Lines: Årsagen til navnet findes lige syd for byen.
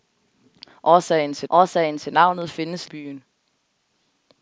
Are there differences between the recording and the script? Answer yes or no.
yes